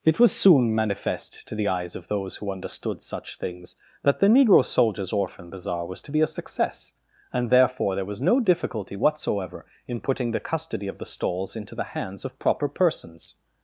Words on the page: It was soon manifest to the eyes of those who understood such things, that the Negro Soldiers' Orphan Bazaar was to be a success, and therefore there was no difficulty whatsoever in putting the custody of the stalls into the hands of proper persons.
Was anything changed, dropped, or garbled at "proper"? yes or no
no